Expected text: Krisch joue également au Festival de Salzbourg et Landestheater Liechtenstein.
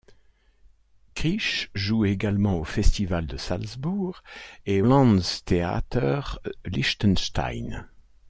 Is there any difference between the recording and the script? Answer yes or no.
no